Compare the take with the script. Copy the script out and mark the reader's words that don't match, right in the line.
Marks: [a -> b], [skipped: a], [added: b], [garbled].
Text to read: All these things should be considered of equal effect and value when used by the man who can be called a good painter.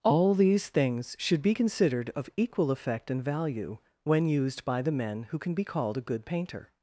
All these things should be considered of equal effect and value when used by the [man -> men] who can be called a good painter.